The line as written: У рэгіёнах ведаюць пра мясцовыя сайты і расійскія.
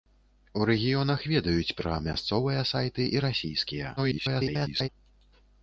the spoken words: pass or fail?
fail